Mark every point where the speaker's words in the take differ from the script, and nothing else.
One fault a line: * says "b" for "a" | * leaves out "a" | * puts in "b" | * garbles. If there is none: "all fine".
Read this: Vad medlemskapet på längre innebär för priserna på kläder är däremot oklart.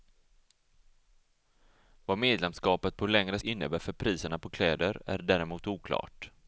all fine